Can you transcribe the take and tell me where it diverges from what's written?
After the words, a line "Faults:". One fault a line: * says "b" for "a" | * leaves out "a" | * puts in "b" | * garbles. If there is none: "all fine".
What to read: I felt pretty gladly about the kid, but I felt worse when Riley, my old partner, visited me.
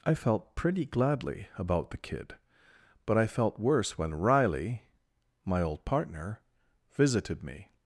I felt pretty gladly about the kid, but I felt worse when Riley, my old partner, visited me.
Faults:
all fine